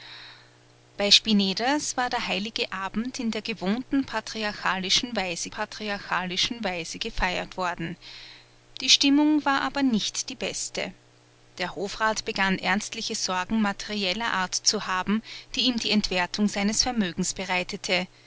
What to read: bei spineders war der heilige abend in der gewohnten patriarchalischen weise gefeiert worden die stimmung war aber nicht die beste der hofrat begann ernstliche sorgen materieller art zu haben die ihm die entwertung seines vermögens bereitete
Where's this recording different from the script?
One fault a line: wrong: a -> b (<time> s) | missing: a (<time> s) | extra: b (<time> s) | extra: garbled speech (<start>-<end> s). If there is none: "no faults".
extra: patriarchalischen weise (5.5 s)